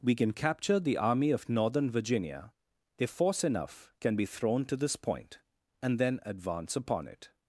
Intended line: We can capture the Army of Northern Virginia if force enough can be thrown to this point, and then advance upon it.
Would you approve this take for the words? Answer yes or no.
yes